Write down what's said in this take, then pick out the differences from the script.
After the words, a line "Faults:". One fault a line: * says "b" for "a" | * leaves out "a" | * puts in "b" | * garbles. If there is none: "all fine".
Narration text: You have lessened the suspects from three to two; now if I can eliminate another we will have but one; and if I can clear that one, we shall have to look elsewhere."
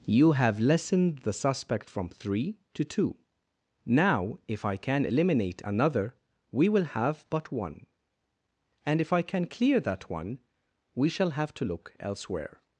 You have lessened the suspect from three to two; now if I can eliminate another we will have but one; and if I can clear that one, we shall have to look elsewhere."
Faults:
* says "suspect" for "suspects"